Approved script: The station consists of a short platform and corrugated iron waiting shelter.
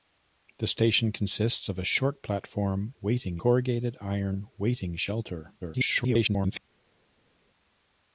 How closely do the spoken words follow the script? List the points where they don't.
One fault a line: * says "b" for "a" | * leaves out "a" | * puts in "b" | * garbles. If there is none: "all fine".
* says "waiting" for "and"
* garbles